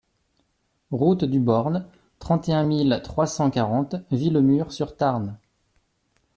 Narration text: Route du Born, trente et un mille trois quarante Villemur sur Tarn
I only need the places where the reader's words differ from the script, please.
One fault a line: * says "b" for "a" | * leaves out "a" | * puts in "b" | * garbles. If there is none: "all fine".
* puts in "cent"